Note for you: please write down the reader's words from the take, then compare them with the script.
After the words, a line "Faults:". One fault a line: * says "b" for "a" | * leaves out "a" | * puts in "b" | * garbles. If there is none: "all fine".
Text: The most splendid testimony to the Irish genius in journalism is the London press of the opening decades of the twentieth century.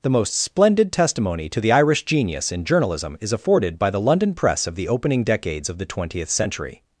The most splendid testimony to the Irish genius in journalism is afforded by the London press of the opening decades of the twentieth century.
Faults:
* puts in "afforded by"